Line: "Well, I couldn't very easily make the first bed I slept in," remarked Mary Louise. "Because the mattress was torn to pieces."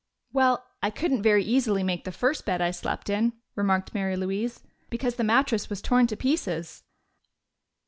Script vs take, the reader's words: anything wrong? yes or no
no